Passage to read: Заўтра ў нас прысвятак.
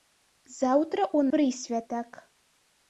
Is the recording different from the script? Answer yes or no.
yes